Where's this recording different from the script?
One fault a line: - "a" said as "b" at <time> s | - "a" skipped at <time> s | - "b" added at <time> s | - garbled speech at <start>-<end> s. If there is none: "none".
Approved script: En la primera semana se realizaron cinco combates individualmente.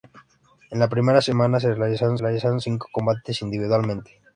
- "realizaron" added at 2.2 s